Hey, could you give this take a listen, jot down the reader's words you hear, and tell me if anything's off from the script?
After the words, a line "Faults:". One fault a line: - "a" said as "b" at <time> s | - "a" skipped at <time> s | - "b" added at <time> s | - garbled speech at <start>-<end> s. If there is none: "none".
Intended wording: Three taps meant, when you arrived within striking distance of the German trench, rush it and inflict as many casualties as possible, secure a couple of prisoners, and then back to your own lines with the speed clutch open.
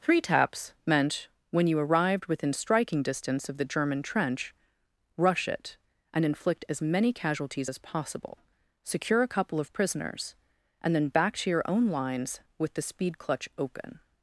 Three taps meant, when you arrived within striking distance of the German trench, rush it and inflict as many casualties as possible, secure a couple of prisoners, and then back to your own lines with the speed clutch open.
Faults:
none